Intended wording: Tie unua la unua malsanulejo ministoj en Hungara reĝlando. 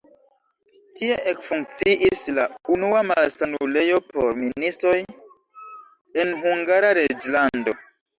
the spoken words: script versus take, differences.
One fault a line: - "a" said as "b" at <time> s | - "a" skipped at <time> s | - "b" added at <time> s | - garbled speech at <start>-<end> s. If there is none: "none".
- "unua" said as "ekfunkciis" at 1.3 s
- "por" added at 4.1 s